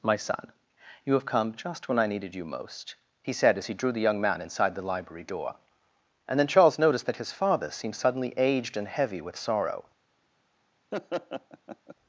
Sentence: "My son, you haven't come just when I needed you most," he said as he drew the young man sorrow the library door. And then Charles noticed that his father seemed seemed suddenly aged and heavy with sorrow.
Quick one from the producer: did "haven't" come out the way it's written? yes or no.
no